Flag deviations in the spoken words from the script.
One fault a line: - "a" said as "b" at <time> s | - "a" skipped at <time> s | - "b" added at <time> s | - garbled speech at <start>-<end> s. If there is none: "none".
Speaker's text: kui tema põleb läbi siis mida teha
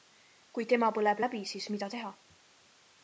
none